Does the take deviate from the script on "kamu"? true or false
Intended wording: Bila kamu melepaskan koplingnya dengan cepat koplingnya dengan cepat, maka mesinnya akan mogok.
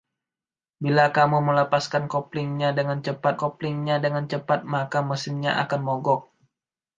false